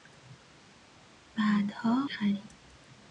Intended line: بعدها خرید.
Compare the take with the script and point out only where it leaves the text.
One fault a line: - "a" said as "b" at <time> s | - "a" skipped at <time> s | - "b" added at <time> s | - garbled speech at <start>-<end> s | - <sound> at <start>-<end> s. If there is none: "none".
none